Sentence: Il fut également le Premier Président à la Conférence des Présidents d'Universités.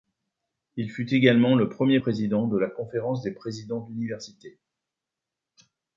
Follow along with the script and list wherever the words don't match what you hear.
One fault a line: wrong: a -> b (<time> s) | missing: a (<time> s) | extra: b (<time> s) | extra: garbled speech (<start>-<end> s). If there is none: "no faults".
wrong: à -> de (2.5 s)